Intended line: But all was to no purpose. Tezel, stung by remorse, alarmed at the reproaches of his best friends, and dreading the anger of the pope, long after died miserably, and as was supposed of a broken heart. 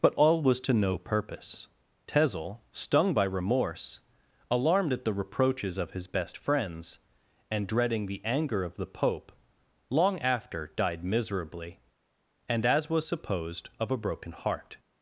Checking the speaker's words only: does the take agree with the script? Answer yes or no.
yes